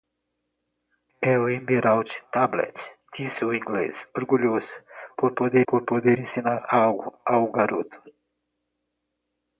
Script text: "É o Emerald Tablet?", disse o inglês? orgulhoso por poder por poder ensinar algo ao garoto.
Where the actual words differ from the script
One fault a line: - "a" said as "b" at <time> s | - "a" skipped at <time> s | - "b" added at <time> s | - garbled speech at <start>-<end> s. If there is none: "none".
none